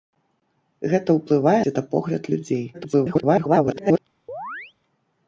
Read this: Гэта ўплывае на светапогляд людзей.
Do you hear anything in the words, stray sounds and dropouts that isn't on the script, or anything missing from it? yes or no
yes